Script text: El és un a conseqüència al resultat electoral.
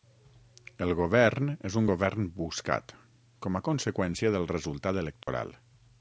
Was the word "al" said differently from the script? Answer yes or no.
yes